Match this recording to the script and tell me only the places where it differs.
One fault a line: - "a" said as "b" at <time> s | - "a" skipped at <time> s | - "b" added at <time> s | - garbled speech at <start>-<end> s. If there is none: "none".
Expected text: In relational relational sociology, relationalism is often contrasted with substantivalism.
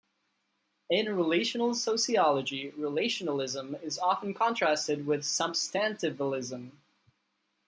- "relational" skipped at 1.8 s